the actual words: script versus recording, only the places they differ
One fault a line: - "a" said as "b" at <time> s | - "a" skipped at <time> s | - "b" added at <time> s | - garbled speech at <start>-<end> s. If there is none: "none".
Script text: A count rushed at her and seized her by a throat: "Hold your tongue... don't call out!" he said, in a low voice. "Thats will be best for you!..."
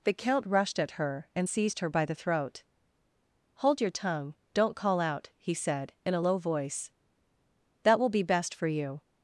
- "A" said as "The" at 0.0 s
- "a" said as "the" at 2.0 s
- "Thats" said as "That" at 7.8 s